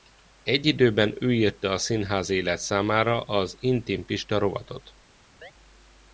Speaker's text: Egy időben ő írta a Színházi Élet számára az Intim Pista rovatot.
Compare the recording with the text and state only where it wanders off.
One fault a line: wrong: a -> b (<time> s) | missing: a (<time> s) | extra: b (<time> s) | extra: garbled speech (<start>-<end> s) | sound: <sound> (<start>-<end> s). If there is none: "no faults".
sound: chirp (5.4-5.5 s)